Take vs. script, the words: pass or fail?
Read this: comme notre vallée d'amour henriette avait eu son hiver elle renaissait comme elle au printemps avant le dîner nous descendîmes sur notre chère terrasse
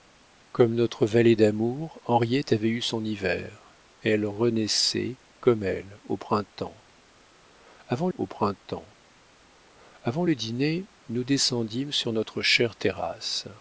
fail